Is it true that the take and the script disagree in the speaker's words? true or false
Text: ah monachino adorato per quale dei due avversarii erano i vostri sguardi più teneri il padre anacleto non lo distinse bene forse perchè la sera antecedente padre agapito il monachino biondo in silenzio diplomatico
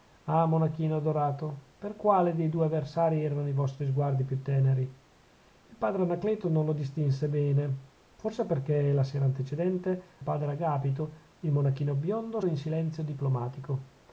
false